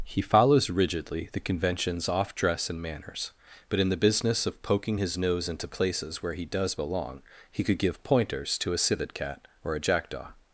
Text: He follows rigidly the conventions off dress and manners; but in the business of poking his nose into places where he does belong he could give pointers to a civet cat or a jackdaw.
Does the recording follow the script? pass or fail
pass